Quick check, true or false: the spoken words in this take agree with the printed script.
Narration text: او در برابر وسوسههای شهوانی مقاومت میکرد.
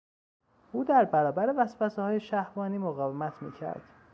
true